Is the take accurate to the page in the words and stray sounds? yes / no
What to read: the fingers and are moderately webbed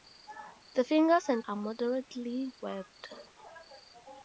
yes